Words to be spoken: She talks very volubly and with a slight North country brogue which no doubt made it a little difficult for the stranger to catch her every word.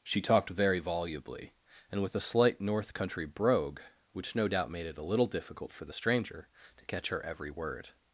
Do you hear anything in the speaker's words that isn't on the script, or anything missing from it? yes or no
yes